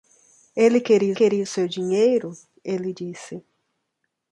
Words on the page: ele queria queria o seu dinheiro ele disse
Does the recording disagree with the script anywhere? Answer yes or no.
no